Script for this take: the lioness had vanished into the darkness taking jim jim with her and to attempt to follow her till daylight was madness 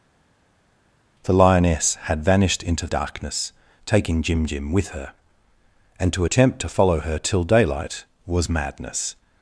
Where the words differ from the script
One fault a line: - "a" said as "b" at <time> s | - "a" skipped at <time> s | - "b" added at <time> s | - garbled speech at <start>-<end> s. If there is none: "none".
- "the" skipped at 2.9 s